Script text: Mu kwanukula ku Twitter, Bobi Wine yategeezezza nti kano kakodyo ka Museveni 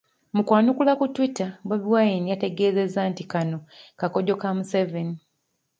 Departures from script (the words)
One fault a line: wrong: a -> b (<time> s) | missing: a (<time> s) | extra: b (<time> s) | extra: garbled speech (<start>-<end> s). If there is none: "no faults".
no faults